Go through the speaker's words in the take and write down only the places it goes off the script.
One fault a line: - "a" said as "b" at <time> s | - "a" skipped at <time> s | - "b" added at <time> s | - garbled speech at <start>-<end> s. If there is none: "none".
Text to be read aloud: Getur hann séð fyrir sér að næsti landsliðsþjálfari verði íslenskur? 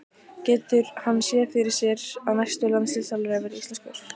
none